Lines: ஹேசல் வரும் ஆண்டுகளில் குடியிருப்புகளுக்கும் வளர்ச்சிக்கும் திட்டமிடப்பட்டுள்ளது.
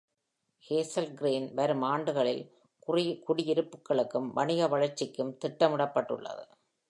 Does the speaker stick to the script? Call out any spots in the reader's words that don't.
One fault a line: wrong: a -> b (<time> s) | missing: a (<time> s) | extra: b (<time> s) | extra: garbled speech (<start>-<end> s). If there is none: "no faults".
extra: கிரீன் (1.1 s)
extra: வணிக (4.3 s)